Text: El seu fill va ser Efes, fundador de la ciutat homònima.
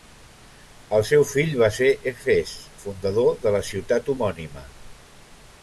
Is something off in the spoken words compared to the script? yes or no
no